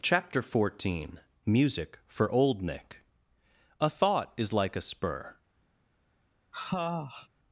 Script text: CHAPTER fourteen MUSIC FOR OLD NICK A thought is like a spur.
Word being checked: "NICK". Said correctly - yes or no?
yes